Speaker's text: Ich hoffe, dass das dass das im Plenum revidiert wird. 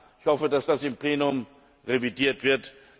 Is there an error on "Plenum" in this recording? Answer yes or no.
no